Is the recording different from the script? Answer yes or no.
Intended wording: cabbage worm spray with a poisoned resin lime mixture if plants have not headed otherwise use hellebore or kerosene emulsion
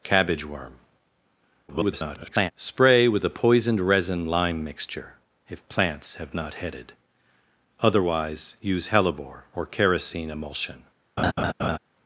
yes